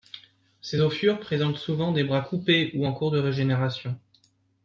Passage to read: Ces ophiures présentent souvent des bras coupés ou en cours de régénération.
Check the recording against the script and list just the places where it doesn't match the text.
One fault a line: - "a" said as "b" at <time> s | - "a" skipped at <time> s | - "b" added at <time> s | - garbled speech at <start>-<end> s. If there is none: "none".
none